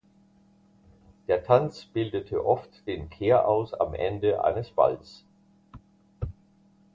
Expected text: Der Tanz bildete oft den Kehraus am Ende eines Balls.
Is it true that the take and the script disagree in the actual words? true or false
false